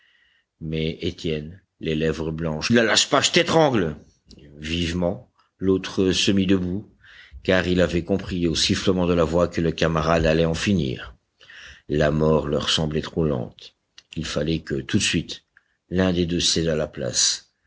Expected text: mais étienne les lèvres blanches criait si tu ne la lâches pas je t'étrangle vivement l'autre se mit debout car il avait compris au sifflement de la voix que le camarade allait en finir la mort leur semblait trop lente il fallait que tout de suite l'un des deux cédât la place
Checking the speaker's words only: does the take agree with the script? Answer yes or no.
no